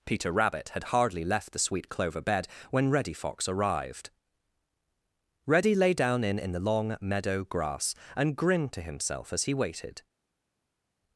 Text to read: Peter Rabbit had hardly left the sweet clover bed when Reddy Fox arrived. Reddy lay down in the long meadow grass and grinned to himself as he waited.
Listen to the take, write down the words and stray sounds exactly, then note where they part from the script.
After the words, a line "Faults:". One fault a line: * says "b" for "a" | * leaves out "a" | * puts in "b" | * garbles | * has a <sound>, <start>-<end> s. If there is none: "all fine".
Peter Rabbit had hardly left the sweet clover bed when Reddy Fox arrived. Reddy lay down in in the long meadow grass and grinned to himself as he waited.
Faults:
* puts in "in"